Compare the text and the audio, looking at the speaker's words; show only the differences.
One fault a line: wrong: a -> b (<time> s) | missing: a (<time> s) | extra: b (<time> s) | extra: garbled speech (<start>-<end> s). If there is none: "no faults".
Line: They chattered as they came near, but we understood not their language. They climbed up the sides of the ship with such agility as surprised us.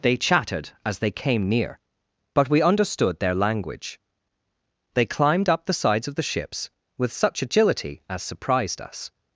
missing: not (3.2 s)
wrong: ship -> ships (6.2 s)